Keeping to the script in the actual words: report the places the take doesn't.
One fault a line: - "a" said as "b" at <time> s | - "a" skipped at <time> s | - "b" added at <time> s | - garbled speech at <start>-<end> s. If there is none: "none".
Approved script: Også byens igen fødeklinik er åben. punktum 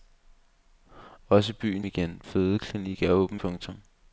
none